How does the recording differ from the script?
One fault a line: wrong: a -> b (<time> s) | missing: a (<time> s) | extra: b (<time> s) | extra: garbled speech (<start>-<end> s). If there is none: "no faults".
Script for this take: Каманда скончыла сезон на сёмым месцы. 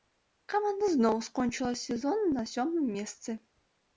extra: зноў (0.9 s)